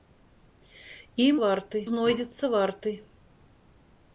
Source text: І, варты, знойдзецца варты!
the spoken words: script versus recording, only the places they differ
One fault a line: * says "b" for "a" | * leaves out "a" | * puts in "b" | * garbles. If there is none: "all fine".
all fine